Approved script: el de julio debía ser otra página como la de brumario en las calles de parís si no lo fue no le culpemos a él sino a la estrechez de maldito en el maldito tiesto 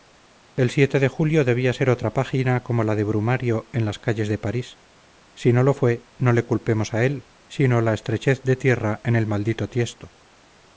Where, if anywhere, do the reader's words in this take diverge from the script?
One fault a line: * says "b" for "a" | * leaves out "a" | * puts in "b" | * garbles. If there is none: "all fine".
* says "tierra" for "maldito"